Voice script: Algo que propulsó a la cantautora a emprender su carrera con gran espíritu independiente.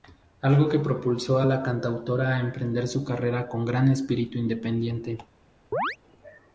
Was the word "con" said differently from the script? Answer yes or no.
no